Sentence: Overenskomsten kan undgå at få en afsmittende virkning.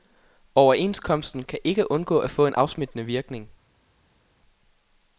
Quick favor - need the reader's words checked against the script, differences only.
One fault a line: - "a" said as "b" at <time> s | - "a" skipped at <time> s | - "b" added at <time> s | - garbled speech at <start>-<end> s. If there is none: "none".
- "ikke" added at 1.6 s